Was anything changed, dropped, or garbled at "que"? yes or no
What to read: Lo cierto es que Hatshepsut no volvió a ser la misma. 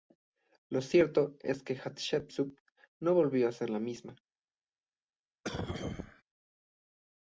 no